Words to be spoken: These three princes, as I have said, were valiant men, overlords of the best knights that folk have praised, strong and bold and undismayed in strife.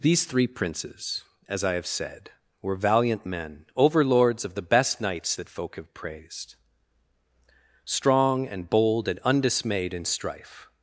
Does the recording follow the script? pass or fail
pass